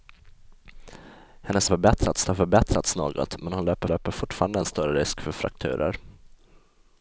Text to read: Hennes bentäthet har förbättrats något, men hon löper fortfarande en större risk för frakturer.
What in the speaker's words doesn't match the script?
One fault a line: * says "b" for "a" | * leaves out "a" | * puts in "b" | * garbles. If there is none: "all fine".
* says "förbättrats" for "bentäthet"
* puts in "löper"